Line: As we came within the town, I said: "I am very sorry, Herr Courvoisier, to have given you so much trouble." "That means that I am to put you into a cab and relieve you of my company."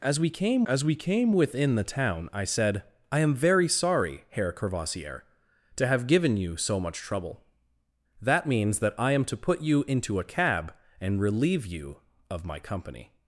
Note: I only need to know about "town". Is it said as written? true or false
true